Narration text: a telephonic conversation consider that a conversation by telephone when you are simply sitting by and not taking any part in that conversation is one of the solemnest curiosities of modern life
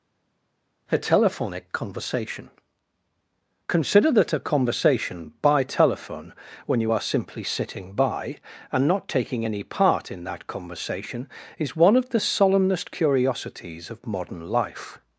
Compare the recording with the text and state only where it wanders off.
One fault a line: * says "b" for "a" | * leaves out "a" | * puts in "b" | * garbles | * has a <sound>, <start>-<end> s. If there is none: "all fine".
all fine